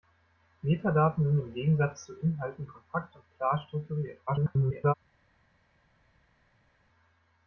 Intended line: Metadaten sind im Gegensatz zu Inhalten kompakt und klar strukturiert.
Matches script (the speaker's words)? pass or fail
fail